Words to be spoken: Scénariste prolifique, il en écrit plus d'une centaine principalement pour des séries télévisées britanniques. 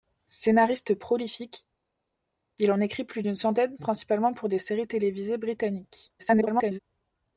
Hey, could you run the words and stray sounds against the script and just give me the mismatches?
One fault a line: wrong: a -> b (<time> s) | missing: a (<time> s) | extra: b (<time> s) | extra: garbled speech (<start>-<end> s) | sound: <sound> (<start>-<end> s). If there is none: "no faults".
extra: garbled speech (6.2-6.8 s)